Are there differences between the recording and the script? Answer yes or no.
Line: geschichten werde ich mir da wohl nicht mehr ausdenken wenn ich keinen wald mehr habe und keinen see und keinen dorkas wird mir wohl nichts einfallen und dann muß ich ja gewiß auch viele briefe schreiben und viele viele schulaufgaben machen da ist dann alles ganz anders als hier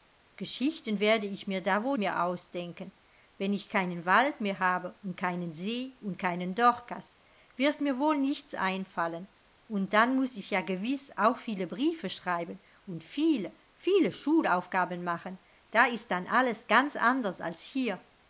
yes